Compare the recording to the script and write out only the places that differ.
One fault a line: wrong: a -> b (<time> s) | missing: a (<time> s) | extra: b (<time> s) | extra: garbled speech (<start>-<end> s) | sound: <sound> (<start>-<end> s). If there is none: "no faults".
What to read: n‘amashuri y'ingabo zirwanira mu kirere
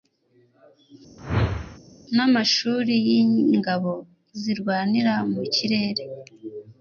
sound: whoosh (1.2-1.8 s)